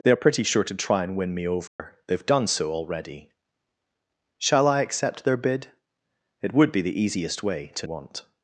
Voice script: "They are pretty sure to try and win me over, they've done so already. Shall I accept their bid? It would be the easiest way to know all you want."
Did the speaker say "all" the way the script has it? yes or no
no